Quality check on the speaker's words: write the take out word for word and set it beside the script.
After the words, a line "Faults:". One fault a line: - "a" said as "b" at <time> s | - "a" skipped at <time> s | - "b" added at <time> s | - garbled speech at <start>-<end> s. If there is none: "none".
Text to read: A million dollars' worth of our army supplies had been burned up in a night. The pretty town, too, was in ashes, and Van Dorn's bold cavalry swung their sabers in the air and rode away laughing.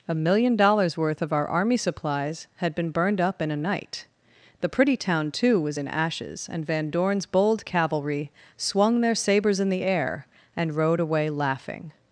A million dollars' worth of our army supplies had been burned up in a night. The pretty town, too, was in ashes, and Van Dorn's bold cavalry swung their sabers in the air and rode away laughing.
Faults:
none